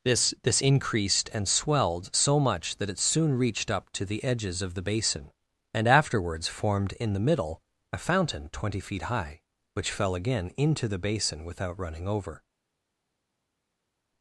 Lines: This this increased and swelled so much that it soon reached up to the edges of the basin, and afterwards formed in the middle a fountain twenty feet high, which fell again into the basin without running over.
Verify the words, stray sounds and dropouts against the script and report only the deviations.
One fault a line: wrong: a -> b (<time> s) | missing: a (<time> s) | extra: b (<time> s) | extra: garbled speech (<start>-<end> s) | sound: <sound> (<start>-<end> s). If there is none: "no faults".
no faults